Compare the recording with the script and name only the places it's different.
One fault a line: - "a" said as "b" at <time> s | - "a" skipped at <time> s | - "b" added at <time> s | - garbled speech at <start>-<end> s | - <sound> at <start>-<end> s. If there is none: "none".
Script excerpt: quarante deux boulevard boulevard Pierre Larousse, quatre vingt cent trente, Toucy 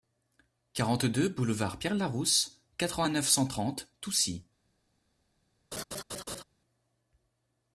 - "boulevard" skipped at 1.8 s
- "neuf" added at 3.1 s
- laugh at 5.7-6.4 s